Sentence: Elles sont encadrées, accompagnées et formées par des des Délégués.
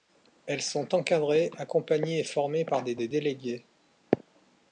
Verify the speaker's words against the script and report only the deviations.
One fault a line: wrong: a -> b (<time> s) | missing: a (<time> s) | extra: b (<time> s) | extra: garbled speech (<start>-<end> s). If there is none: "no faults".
no faults